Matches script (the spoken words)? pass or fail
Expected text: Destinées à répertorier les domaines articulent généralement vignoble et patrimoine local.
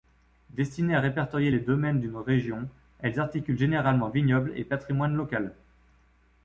fail